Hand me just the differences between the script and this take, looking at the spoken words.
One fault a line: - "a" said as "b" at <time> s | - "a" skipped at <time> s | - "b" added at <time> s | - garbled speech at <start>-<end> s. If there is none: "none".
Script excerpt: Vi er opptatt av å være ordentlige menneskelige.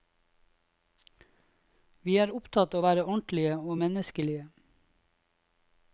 - "og" added at 3.6 s